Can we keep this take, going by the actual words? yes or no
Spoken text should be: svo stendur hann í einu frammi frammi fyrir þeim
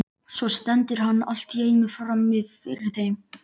no